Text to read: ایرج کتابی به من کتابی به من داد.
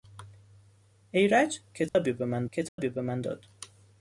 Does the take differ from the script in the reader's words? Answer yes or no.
no